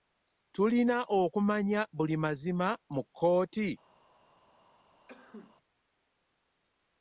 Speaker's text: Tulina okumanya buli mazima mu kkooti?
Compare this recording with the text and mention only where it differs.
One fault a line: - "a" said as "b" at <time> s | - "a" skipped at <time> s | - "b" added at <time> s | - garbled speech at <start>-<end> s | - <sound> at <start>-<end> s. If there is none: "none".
- sneeze at 5.1-5.6 s